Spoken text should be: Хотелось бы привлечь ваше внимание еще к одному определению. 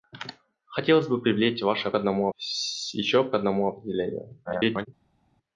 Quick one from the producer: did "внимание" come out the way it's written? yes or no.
no